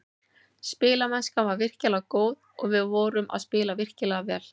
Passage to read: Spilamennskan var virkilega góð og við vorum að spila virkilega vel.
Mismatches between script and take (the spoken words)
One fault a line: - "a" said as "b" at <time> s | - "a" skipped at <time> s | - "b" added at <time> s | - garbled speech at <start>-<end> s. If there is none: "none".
none